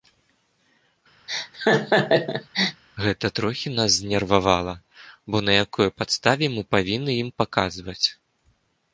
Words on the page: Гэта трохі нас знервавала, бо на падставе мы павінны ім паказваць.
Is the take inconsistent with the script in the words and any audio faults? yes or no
yes